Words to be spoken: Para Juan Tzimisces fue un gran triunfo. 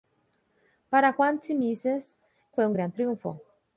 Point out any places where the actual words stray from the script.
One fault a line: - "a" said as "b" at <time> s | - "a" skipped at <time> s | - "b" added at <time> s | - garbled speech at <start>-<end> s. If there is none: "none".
none